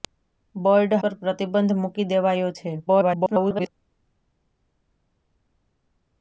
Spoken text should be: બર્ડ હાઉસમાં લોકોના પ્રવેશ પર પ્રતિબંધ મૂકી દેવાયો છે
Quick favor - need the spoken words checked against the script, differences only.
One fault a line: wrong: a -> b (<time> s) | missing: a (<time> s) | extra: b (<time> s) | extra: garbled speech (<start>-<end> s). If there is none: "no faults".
missing: હાઉસમાં લોકોના પ્રવેશ (0.9 s)
extra: garbled speech (2.9-3.7 s)